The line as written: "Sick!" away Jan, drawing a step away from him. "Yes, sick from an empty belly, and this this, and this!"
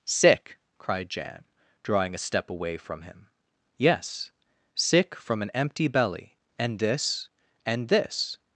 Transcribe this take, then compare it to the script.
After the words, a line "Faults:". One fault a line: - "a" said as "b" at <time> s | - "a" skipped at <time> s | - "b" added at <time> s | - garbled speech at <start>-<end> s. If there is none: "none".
"Sick!" cried Jan, drawing a step away from him. "Yes, sick from an empty belly, and this, and this!"
Faults:
- "away" said as "cried" at 0.8 s
- "this" skipped at 7.3 s